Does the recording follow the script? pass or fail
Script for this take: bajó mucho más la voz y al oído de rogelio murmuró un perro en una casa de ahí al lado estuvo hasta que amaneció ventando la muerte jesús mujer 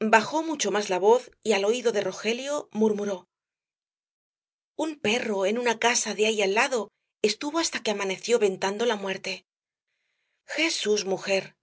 pass